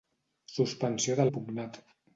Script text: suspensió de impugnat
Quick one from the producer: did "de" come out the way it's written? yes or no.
yes